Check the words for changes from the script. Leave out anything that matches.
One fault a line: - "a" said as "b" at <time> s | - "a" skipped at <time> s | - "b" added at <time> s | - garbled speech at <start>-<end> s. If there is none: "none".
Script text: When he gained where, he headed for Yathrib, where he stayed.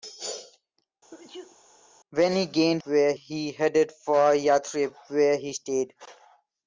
none